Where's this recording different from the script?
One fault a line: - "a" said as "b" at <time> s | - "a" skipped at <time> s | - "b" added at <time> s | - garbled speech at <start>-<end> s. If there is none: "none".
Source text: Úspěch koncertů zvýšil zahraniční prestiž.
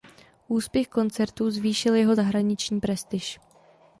- "jeho" added at 1.9 s